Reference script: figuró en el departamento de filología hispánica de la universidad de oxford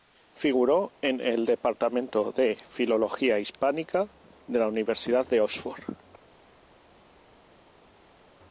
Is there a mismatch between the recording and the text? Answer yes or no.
no